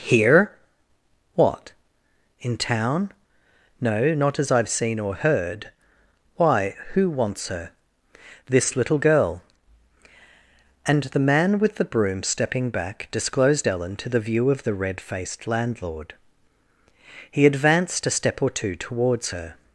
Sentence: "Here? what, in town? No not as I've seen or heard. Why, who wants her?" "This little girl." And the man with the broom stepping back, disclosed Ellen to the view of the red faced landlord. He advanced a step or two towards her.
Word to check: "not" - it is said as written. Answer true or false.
true